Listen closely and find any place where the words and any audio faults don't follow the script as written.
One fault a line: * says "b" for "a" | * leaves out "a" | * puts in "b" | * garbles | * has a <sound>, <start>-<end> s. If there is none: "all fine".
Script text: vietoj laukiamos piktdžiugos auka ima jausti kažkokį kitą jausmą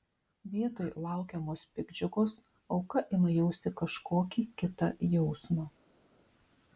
all fine